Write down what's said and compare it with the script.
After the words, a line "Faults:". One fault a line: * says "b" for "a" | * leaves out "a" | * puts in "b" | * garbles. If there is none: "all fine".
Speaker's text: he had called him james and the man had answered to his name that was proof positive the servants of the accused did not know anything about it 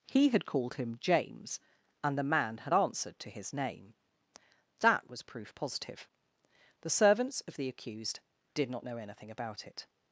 he had called him james and the man had answered to his name that was proof positive the servants of the accused did not know anything about it
Faults:
all fine